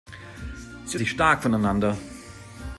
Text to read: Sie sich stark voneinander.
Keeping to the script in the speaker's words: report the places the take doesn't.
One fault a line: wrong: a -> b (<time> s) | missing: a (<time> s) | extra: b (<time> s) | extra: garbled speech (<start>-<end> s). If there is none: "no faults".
no faults